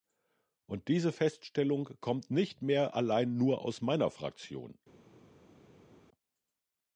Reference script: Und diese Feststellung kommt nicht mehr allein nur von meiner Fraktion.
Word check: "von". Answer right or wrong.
wrong